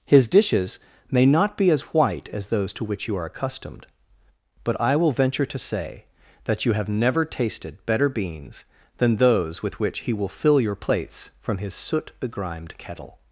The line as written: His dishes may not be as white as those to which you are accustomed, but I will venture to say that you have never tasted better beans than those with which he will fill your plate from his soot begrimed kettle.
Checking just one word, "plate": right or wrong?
wrong